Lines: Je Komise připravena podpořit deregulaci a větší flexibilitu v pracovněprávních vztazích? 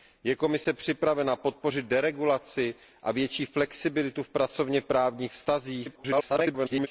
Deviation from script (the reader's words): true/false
true